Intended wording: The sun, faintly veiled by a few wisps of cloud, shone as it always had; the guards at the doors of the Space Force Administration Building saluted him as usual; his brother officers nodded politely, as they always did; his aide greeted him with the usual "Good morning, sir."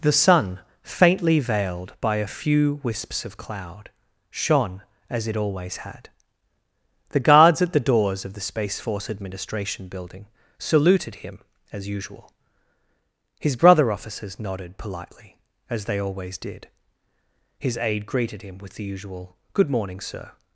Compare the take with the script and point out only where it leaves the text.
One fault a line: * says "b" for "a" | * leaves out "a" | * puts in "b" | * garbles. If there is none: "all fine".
all fine